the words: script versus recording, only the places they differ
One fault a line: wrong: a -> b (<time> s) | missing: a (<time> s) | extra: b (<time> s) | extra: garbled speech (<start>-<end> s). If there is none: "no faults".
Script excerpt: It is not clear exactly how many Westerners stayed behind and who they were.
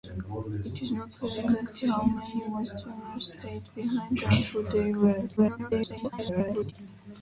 extra: garbled speech (5.4-6.7 s)